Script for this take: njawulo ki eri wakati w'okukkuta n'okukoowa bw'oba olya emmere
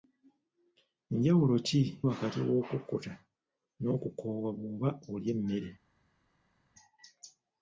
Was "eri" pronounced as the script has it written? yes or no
no